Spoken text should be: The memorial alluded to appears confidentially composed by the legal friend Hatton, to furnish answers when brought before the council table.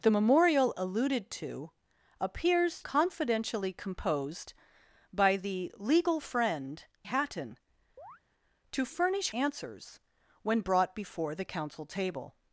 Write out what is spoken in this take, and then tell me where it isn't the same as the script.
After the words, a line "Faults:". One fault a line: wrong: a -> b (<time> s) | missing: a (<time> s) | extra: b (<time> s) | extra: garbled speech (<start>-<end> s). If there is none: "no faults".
The memorial alluded to appears confidentially composed by the legal friend Hatton, to furnish answers when brought before the council table.
Faults:
no faults